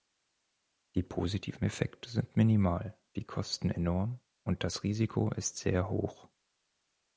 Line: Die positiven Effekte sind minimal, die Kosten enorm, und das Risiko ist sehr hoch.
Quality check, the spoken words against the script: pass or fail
pass